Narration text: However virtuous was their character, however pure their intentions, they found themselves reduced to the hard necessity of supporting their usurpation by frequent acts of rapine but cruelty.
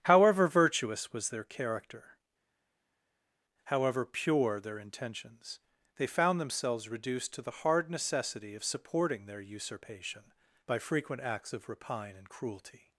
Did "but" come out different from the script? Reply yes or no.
yes